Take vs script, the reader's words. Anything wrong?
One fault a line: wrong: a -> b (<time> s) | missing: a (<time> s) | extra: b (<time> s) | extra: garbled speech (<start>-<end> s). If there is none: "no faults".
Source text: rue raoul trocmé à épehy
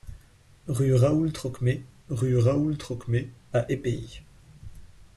extra: rue raoul trocmé (2.1 s)